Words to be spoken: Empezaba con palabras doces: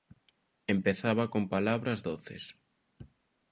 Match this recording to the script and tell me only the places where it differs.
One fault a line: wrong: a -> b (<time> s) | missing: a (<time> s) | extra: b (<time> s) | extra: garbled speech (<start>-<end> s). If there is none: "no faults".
no faults